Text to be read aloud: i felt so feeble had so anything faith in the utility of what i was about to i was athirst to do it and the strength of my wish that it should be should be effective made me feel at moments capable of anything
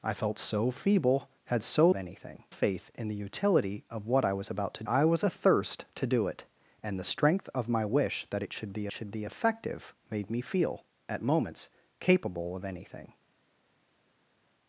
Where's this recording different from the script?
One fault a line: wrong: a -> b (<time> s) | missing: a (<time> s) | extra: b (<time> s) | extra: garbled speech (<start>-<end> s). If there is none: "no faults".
no faults